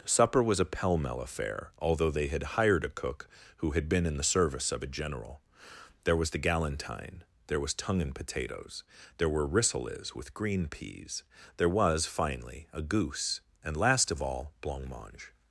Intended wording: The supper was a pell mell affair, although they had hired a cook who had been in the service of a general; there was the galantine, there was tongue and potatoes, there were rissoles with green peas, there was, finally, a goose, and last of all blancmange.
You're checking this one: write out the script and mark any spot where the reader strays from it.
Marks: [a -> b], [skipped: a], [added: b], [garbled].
[skipped: The] supper was a pell mell affair, although they had hired a cook who had been in the service of a general; there was the galantine, there was tongue and potatoes, there were rissoles with green peas, there was, finally, a goose, and last of all blancmange.